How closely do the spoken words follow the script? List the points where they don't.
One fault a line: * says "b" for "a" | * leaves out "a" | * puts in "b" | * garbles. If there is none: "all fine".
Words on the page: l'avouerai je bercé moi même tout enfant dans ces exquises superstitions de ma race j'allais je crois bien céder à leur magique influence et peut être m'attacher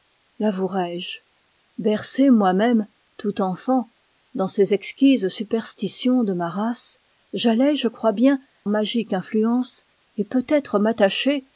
* leaves out "céder à leur"